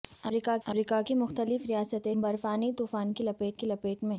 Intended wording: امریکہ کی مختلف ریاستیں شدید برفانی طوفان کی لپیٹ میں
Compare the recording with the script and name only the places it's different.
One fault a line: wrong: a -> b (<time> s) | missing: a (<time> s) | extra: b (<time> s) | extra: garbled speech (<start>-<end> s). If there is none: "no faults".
extra: امریکہ (0.7 s)
missing: شدید (2.1 s)
extra: کی لپیٹ (3.5 s)